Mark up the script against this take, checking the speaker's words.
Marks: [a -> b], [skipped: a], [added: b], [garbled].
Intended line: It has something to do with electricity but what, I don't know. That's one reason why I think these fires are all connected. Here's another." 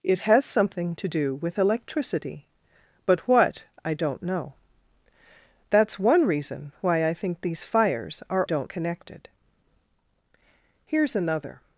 It has something to do with electricity but what, I don't know. That's one reason why I think these fires are [all -> don't] connected. Here's another."